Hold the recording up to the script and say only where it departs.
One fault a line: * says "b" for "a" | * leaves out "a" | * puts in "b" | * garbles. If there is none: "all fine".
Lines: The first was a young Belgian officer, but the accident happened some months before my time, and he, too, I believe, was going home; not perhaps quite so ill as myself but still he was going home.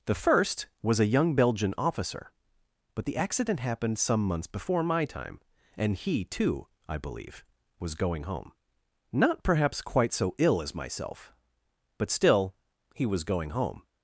all fine